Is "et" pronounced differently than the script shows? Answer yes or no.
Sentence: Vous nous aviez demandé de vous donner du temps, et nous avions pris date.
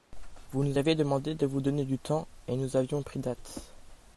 no